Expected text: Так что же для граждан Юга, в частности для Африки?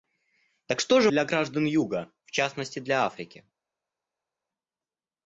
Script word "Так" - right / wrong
right